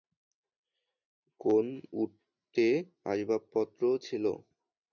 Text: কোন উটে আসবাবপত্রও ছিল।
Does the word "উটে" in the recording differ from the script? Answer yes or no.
no